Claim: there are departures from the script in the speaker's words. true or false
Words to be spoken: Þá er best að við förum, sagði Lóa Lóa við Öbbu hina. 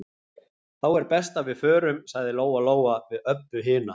false